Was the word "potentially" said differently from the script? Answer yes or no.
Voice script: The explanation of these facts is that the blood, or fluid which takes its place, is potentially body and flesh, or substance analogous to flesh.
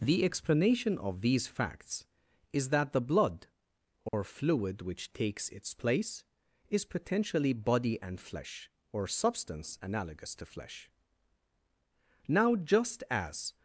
no